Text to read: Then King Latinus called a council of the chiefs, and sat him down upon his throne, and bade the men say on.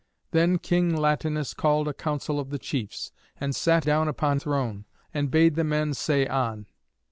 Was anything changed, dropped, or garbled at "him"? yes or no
yes